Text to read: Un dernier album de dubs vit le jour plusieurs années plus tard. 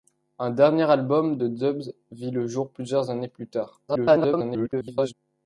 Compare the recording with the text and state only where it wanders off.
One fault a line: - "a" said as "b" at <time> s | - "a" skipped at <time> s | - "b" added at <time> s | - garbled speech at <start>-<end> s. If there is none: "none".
- garbled speech at 3.9-5.1 s